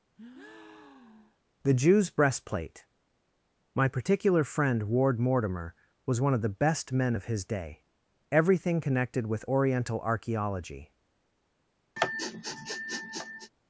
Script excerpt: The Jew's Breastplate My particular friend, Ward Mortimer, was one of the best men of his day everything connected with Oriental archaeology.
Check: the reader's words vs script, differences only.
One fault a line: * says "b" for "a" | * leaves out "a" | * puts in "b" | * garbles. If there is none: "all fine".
all fine